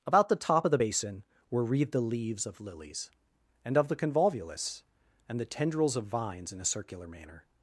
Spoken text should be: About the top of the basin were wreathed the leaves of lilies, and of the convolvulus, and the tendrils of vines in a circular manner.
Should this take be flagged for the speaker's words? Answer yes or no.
no